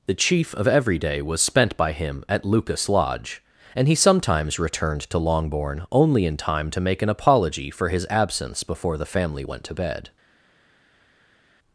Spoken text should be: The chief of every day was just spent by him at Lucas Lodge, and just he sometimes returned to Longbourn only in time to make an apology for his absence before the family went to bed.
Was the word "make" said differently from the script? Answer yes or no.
no